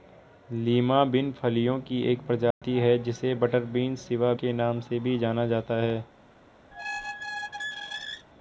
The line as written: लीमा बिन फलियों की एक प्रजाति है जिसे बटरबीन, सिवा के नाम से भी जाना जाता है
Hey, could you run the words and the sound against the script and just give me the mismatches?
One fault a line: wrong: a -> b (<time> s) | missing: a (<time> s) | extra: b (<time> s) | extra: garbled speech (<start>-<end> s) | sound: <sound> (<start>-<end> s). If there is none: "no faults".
sound: dropout (2.5-2.6 s)
sound: squeak (6.7-8.3 s)